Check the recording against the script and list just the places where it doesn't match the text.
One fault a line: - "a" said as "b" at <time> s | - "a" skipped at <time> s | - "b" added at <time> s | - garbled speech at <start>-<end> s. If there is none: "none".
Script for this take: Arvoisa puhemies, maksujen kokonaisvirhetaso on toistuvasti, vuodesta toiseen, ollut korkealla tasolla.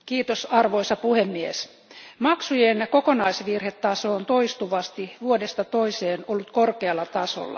none